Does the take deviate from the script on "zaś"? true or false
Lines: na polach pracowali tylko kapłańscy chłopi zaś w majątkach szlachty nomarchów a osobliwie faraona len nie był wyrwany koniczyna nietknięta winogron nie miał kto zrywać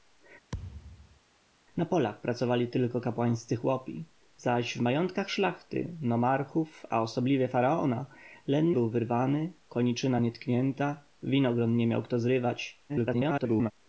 false